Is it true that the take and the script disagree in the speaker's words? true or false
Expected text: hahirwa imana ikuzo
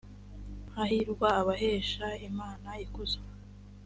true